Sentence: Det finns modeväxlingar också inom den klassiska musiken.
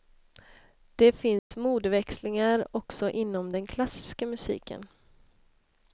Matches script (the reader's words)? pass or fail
pass